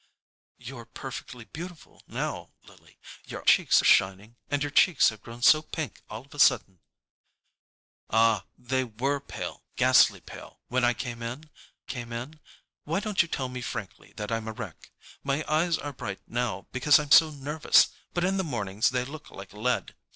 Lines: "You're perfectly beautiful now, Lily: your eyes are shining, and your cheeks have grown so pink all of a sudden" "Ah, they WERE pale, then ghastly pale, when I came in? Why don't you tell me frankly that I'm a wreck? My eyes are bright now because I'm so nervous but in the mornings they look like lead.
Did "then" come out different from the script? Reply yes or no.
yes